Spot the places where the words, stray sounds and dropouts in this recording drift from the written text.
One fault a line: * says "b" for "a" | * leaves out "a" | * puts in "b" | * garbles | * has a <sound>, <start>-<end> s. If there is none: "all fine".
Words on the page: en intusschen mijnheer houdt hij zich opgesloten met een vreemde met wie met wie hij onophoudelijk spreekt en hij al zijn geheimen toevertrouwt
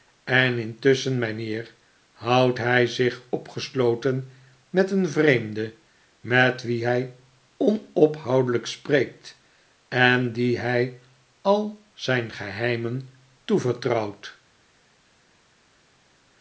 * leaves out "met wie"
* puts in "die"